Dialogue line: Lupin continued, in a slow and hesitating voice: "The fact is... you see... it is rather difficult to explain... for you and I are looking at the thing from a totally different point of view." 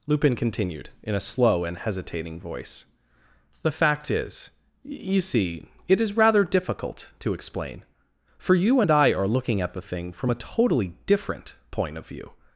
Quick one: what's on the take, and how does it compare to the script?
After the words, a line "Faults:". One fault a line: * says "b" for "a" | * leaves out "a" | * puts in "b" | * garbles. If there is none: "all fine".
Lupin continued, in a slow and hesitating voice: "The fact is... you see... it is rather difficult to explain... for you and I are looking at the thing from a totally different point of view."
Faults:
all fine